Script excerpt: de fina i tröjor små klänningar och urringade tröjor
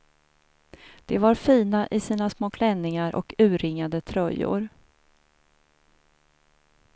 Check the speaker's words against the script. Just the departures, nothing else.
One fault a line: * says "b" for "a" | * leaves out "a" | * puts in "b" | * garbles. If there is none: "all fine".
* puts in "var"
* says "sina" for "tröjor"